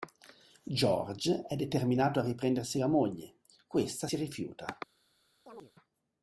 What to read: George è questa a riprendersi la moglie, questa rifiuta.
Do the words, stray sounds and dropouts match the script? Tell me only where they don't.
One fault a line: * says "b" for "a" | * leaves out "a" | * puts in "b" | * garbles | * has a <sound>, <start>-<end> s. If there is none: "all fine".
* says "determinato" for "questa"
* puts in "si"
* has a chirp, 5.5-5.7 s